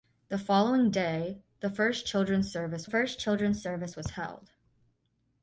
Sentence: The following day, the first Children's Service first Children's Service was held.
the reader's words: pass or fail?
pass